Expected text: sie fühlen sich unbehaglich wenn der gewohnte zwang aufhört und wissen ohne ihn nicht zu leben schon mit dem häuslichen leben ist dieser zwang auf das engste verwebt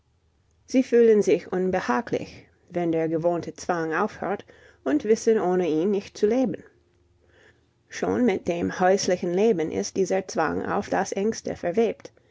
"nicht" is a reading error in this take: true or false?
false